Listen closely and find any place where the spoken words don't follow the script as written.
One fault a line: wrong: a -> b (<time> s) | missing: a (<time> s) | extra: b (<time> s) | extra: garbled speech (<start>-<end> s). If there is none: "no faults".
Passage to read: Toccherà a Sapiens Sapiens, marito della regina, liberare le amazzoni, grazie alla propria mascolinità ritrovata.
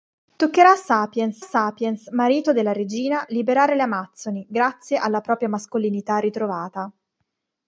no faults